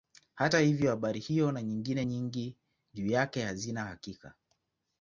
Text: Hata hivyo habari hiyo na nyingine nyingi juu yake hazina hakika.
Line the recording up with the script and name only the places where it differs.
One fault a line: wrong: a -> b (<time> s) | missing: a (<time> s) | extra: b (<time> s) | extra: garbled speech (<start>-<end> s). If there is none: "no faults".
no faults